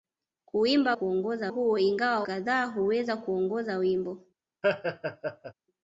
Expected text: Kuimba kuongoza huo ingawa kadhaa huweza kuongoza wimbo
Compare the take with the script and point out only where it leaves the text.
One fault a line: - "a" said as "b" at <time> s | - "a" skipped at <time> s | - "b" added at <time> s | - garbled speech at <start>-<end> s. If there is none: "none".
none